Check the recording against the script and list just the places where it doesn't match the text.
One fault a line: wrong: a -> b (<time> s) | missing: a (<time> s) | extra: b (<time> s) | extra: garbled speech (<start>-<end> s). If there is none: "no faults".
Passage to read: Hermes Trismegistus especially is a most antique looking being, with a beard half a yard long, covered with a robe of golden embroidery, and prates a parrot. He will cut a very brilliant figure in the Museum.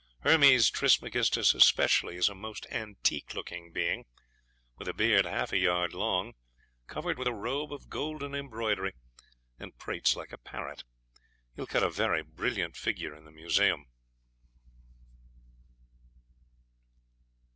extra: like (10.2 s)